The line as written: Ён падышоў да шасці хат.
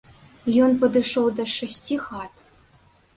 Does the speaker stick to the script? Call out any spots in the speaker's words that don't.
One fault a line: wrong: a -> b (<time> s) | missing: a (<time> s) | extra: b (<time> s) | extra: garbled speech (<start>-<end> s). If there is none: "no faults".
no faults